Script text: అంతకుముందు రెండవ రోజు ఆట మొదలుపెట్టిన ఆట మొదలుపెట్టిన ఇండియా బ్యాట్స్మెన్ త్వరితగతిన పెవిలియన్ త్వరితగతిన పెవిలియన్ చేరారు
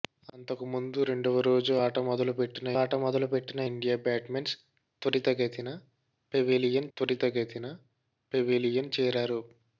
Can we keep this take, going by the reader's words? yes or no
yes